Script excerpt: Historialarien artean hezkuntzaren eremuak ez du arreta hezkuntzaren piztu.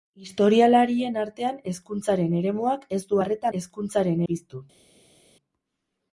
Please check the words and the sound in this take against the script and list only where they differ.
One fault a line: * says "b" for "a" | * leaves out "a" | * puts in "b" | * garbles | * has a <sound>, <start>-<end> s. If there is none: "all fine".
all fine